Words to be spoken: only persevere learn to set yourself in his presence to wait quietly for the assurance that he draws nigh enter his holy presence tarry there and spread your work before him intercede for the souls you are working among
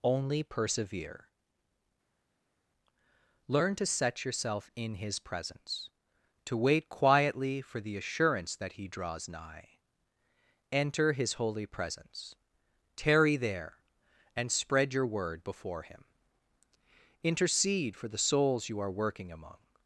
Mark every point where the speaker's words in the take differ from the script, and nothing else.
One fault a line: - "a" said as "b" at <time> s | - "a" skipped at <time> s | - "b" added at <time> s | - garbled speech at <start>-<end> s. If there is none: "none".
- "work" said as "word" at 15.0 s